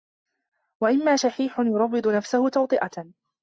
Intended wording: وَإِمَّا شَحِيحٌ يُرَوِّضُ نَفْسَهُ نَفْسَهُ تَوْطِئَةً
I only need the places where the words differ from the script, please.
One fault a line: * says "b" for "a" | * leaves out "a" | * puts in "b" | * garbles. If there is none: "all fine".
* leaves out "نَفْسَهُ"